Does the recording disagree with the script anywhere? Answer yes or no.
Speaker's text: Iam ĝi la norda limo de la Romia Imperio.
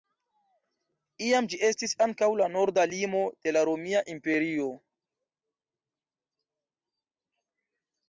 yes